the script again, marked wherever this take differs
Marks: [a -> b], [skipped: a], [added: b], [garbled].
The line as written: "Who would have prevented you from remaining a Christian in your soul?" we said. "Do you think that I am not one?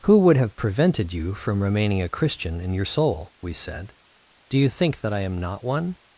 "Who would have prevented you from remaining a Christian in your soul?" we said. "Do you think that I am not one?